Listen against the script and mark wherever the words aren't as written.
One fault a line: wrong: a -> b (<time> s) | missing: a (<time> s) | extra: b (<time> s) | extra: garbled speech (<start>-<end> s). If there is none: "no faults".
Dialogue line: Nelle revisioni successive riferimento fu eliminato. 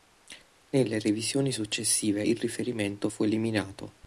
extra: il (2.2 s)